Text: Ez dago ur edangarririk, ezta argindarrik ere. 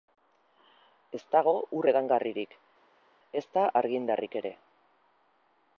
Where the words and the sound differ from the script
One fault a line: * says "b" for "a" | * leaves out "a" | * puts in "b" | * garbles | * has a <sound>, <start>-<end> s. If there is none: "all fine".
all fine